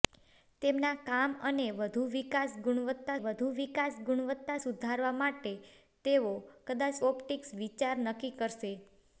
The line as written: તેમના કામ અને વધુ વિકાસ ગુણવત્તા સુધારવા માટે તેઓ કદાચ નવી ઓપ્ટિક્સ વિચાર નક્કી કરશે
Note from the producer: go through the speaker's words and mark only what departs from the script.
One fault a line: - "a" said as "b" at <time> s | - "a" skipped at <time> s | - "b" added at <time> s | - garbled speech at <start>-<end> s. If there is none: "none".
- "વધુ વિકાસ ગુણવત્તા" added at 3.2 s
- "નવી" skipped at 7.0 s